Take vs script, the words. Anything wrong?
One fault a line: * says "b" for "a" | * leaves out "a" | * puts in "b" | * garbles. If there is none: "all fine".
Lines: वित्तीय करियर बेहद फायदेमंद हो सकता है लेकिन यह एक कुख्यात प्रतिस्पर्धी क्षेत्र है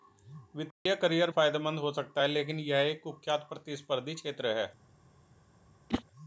* leaves out "बेहद"